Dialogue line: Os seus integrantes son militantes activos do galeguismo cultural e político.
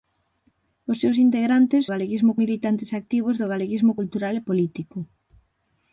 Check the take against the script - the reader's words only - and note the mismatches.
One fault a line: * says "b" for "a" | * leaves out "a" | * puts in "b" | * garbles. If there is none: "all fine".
* says "galeguismo" for "son"